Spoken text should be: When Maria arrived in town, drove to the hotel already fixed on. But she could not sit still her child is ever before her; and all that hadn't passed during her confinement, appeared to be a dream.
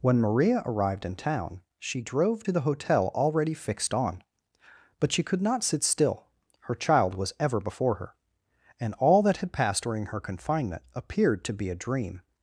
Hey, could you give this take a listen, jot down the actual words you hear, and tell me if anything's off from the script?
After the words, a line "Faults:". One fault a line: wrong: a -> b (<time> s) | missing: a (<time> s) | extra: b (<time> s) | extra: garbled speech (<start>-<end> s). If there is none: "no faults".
When Maria arrived in town, she drove to the hotel already fixed on. But she could not sit still her child was ever before her; and all that had passed during her confinement, appeared to be a dream.
Faults:
extra: she (1.8 s)
wrong: is -> was (7.1 s)
wrong: hadn't -> had (9.4 s)